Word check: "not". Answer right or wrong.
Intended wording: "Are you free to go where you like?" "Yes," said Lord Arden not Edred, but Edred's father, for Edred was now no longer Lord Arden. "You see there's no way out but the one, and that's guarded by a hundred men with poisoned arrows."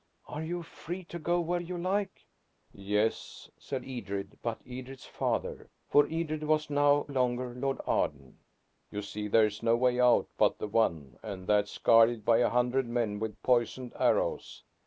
wrong